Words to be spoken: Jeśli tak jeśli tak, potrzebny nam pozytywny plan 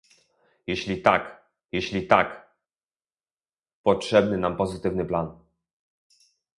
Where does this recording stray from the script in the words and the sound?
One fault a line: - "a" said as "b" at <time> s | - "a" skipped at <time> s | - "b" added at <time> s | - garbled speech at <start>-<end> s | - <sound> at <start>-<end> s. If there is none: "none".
none